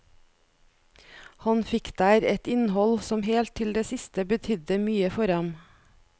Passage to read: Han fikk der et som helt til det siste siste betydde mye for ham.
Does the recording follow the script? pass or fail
fail